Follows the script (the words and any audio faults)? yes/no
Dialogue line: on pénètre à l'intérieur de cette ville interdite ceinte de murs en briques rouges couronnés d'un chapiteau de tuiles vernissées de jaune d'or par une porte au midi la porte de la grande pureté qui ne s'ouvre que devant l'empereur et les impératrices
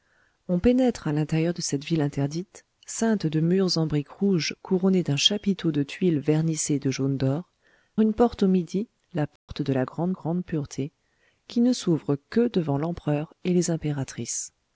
no